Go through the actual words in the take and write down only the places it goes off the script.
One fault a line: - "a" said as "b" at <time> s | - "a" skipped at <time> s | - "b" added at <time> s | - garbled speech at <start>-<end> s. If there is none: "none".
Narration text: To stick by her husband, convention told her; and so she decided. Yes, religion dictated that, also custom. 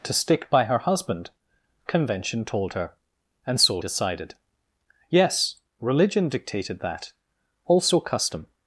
- "she" skipped at 3.8 s